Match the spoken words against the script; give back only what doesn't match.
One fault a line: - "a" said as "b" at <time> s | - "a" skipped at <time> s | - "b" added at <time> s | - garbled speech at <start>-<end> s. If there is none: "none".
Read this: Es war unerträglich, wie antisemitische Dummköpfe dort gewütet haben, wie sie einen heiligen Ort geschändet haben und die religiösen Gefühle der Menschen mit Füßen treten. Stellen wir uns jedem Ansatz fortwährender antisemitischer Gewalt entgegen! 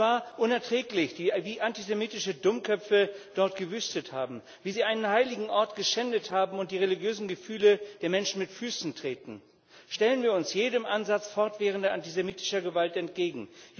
none